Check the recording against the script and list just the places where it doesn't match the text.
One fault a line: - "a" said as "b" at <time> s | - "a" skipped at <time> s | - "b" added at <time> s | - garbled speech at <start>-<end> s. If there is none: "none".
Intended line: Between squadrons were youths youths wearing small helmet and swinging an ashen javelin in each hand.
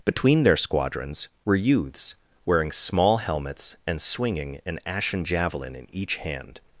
- "their" added at 0.4 s
- "youths" skipped at 2.1 s
- "helmet" said as "helmets" at 3.2 s